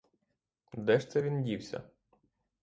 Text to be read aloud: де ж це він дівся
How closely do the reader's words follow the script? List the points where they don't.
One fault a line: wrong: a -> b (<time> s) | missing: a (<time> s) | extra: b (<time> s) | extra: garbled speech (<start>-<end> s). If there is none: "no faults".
no faults